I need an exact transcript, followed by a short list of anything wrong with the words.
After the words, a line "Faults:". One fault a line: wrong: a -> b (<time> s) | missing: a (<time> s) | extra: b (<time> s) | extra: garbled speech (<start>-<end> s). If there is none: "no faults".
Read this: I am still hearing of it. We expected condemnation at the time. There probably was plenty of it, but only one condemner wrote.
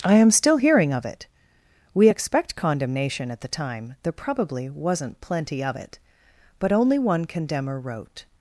I am still hearing of it. We expect condemnation at the time. There probably wasn't plenty of it, but only one condemner wrote.
Faults:
wrong: expected -> expect (2.1 s)
wrong: was -> wasn't (4.7 s)